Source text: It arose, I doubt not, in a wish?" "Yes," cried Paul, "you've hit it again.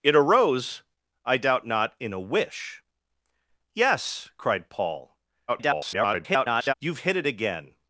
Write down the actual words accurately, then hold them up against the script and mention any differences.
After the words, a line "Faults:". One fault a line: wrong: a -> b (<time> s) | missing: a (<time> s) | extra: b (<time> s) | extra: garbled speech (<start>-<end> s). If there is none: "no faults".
It arose, I doubt not, in a wish?" "Yes," cried Paul, [garbled] "you've hit it again.
Faults:
extra: garbled speech (5.5-6.7 s)